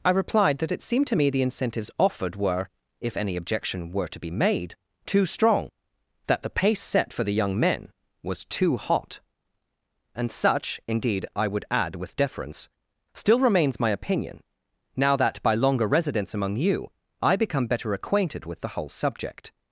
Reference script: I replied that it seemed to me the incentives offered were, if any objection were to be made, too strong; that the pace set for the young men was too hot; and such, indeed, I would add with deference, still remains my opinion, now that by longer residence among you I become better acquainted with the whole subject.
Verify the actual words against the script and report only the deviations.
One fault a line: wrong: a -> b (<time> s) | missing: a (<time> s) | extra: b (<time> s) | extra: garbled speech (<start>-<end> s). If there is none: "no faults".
no faults